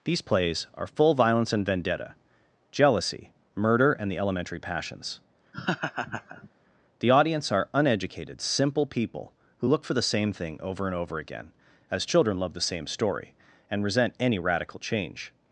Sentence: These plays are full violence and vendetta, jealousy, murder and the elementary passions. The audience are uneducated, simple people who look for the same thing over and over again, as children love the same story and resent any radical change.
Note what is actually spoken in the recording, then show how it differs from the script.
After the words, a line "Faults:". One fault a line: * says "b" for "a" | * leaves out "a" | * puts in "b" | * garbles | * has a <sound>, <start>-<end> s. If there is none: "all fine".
These plays are full violence and vendetta, jealousy, murder and the elementary passions. The audience are uneducated, simple people who look for the same thing over and over again, as children love the same story and resent any radical change.
Faults:
* has a laugh, 5.5-6.5 s